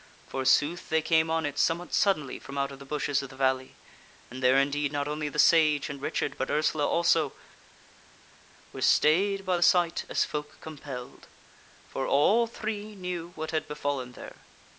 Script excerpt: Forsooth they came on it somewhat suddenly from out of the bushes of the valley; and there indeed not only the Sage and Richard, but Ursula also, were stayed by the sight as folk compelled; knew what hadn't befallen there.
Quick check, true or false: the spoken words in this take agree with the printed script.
false